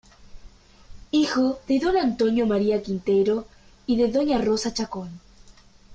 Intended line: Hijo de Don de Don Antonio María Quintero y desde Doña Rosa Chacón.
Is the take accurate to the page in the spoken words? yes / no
no